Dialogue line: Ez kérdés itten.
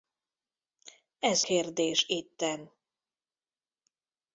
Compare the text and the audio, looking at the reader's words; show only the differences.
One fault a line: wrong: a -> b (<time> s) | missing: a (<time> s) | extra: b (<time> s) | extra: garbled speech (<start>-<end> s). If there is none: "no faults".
no faults